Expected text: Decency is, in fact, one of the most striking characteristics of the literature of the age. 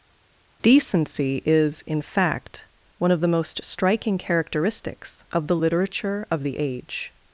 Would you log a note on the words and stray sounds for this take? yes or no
no